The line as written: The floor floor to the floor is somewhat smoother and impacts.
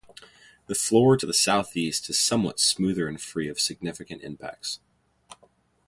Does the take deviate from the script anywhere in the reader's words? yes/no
yes